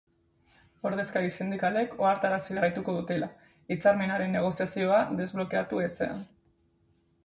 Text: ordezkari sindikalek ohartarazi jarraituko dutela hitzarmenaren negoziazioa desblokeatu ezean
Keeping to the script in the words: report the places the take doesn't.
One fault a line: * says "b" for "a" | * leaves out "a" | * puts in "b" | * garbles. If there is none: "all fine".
all fine